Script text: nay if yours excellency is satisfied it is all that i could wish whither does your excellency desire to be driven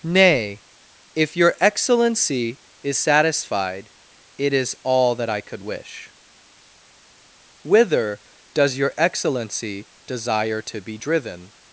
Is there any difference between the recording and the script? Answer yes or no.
yes